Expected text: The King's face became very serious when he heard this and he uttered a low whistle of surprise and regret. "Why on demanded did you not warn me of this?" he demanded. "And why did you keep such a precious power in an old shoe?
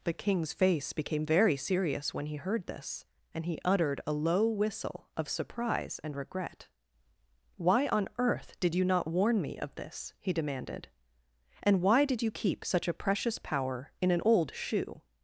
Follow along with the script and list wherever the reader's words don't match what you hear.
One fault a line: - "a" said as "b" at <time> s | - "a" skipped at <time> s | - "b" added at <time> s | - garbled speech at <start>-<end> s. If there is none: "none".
- "demanded" said as "earth" at 8.2 s